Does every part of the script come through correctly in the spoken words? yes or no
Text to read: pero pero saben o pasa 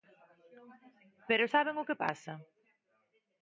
no